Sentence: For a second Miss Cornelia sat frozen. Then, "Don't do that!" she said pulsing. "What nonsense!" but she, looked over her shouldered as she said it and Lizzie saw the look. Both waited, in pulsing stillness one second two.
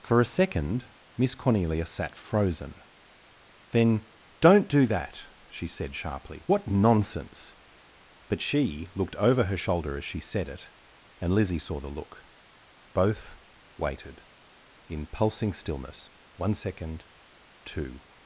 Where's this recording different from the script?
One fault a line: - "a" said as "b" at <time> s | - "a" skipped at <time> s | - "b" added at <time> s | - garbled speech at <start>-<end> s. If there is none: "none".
- "pulsing" said as "sharply" at 6.0 s
- "shouldered" said as "shoulder" at 9.6 s